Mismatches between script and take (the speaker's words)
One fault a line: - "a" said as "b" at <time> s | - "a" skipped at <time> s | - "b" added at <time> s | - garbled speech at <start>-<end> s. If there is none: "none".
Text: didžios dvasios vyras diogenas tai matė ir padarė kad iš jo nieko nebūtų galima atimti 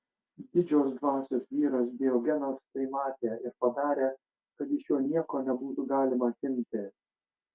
none